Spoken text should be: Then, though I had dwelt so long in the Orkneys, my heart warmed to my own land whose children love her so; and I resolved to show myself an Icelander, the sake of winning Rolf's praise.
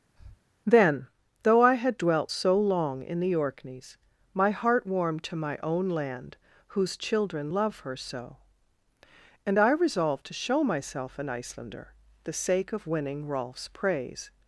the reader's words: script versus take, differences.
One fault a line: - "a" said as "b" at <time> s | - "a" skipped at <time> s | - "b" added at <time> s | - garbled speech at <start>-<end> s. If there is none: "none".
none